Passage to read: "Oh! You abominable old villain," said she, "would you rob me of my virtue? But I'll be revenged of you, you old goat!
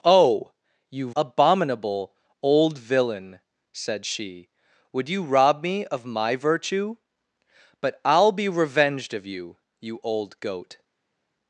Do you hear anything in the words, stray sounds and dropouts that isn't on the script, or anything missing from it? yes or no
no